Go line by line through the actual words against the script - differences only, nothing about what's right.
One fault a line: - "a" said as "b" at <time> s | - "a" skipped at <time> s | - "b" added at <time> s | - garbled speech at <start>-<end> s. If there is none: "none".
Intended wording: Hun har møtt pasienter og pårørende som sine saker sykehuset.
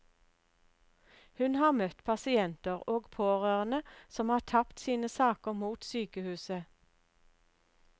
- "har tapt" added at 4.3 s
- "mot" added at 5.6 s